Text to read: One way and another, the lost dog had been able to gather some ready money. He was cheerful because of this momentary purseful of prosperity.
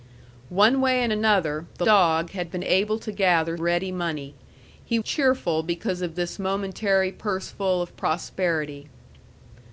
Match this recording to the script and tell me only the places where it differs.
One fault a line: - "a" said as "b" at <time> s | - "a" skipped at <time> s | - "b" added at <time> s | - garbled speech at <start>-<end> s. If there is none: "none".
- "lost" skipped at 1.9 s
- "some" skipped at 3.6 s
- "was" skipped at 5.0 s